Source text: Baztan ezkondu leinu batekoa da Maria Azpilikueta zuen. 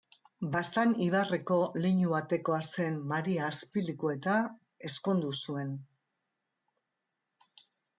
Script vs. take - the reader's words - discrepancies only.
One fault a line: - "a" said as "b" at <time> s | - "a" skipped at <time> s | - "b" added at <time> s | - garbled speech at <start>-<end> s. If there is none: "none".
- "ezkondu" said as "ibarreko" at 1.1 s
- "da" said as "zen" at 2.7 s
- "ezkondu" added at 4.9 s